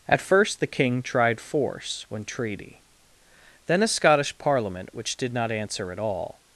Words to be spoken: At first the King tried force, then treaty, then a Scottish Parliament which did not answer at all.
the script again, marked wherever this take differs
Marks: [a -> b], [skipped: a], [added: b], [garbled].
At first the King tried force, [then -> when] treaty, then a Scottish Parliament which did not answer at all.